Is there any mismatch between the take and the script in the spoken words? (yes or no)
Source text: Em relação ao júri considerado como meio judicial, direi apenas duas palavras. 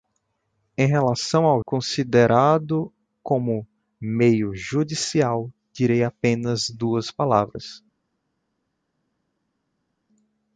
yes